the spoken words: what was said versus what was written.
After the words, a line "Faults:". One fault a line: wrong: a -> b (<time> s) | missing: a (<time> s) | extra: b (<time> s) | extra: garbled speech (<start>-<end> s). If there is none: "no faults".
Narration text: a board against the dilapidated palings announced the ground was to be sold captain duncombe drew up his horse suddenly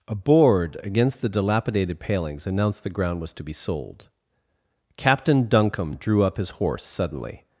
a board against the dilapidated palings announced the ground was to be sold captain duncombe drew up his horse suddenly
Faults:
no faults